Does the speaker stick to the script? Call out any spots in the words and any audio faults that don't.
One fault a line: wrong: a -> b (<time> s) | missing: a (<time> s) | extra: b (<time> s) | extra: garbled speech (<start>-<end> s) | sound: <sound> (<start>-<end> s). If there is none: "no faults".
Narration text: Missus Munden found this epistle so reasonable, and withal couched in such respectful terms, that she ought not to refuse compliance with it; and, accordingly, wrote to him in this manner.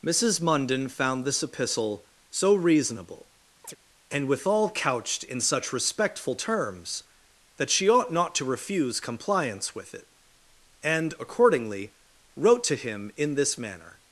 sound: chirp (3.6-3.8 s)